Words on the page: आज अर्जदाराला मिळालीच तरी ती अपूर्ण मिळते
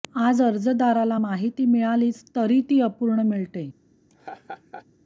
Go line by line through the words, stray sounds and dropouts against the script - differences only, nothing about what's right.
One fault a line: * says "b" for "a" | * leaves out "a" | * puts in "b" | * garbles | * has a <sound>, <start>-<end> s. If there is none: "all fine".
* puts in "माहिती"
* has a laugh, 4.1-4.9 s